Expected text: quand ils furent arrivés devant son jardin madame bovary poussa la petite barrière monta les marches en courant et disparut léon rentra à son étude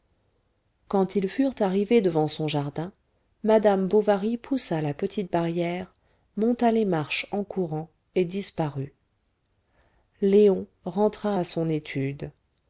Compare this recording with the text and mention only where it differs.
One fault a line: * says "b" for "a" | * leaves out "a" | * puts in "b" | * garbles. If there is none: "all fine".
all fine